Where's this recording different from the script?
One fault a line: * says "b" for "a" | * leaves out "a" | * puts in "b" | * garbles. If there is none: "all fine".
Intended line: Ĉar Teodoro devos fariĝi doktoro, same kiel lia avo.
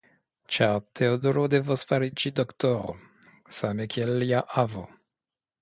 all fine